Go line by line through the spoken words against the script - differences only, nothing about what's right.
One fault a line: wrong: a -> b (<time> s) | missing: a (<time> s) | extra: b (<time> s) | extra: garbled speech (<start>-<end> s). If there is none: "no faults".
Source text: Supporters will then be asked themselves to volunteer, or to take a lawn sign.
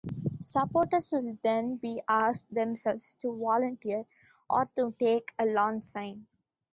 no faults